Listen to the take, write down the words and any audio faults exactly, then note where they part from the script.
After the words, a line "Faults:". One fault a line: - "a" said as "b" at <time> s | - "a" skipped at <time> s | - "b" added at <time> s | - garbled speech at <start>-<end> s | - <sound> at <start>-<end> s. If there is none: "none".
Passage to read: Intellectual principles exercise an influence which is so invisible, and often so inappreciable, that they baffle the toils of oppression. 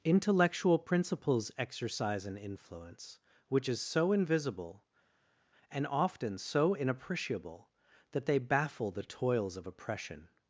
Intellectual principles exercise an influence which is so invisible, and often so inappreciable, that they baffle the toils of oppression.
Faults:
none